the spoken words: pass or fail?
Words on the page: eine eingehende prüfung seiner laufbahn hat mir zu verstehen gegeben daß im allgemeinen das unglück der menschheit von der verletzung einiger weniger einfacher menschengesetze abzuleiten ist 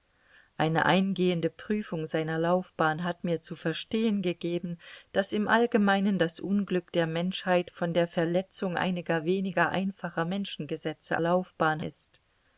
fail